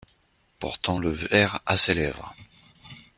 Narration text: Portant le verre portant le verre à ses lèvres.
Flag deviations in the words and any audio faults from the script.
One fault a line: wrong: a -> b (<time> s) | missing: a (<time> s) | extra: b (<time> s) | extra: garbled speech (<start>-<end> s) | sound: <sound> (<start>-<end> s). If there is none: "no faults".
missing: portant le verre (1.6 s)